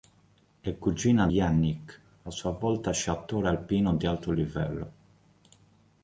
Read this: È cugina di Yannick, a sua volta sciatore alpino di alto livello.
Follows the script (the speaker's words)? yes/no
no